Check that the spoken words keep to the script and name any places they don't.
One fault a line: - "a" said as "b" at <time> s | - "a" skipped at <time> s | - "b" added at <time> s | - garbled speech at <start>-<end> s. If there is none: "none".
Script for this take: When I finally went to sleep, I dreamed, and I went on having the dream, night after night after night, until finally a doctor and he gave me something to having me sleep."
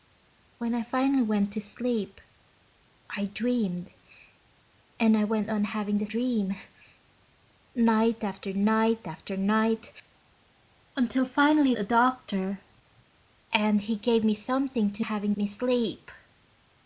none